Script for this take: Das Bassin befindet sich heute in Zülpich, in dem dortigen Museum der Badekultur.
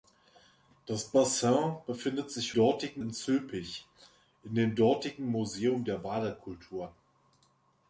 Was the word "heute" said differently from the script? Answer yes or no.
yes